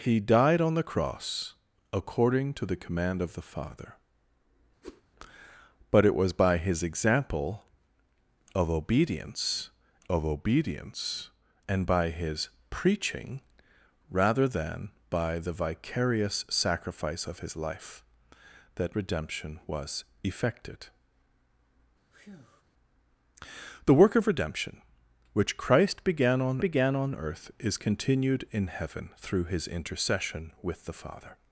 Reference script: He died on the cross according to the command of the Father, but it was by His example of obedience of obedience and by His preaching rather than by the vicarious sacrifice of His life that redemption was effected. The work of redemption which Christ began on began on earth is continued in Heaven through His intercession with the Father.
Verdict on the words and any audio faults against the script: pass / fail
fail